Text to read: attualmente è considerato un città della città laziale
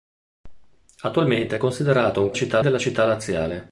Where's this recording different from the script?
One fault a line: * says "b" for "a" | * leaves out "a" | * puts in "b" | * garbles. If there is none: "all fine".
all fine